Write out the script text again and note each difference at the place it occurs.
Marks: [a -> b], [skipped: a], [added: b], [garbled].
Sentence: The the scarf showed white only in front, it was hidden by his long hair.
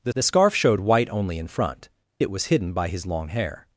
The the scarf showed white only in front, it was hidden by his long hair.